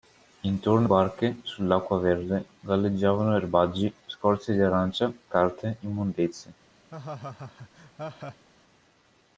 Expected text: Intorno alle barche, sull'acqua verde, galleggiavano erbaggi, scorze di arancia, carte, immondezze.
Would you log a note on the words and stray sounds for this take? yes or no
yes